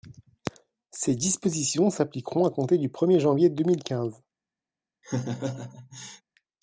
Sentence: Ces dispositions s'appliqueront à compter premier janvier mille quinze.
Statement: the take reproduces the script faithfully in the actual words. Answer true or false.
false